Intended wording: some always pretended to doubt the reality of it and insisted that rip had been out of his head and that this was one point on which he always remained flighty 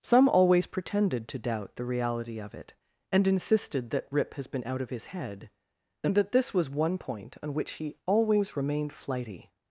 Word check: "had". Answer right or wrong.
wrong